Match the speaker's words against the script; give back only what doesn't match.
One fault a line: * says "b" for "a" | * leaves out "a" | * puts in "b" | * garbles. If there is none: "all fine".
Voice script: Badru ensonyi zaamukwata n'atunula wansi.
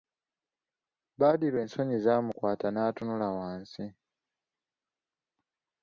all fine